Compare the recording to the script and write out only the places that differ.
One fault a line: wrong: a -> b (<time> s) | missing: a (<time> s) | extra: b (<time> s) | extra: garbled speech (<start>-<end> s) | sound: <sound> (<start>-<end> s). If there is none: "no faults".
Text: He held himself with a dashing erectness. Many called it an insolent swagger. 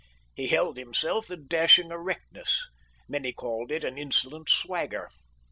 missing: with (1.3 s)